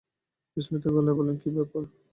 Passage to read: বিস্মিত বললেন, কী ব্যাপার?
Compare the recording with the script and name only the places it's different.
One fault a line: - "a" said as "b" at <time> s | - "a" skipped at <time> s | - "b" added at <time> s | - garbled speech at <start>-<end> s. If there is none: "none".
- "গলায়" added at 0.9 s